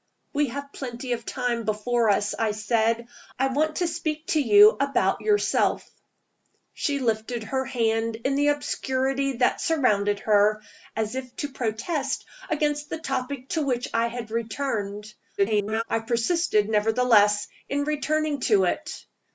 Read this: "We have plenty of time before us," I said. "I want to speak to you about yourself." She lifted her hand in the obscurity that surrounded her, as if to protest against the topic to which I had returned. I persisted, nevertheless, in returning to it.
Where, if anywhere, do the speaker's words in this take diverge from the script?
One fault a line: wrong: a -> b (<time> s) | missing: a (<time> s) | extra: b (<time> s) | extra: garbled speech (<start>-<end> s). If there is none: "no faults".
extra: garbled speech (15.4-15.8 s)